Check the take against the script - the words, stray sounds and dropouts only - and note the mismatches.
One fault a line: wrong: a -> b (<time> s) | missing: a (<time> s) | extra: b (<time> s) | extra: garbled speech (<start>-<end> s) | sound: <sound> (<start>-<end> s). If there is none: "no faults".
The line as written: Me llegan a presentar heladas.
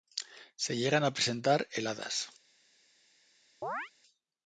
wrong: Me -> Se (0.6 s)
sound: chirp (3.6-3.9 s)